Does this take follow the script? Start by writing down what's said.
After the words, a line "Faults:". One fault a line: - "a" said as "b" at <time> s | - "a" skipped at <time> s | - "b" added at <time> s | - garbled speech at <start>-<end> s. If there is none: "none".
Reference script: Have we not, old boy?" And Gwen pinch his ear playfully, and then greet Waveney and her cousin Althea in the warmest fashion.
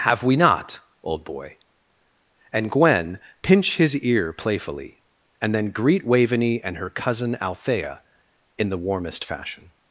Have we not, old boy?" And Gwen pinch his ear playfully, and then greet Waveney and her cousin Althea in the warmest fashion.
Faults:
none